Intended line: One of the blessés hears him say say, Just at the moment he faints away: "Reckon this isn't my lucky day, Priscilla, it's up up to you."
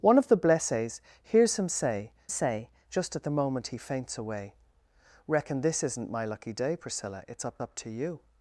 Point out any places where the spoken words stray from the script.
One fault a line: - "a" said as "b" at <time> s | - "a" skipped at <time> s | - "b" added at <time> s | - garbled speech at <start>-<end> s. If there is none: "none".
none